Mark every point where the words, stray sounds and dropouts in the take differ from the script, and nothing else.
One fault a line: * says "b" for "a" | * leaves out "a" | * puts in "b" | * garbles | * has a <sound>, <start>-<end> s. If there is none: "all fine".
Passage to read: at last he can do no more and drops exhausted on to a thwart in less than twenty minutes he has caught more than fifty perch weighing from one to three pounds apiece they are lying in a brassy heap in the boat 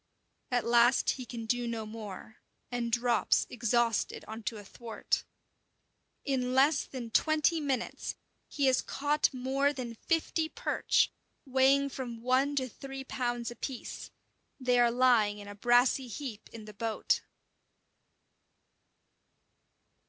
all fine